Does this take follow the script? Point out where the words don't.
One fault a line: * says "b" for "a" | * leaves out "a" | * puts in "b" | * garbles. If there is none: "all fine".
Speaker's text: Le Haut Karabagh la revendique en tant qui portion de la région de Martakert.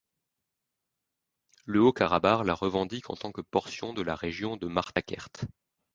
* says "que" for "qui"